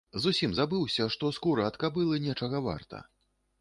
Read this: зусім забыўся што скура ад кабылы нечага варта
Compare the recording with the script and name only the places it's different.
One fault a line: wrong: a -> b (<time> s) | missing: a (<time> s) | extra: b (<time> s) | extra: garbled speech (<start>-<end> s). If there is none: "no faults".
no faults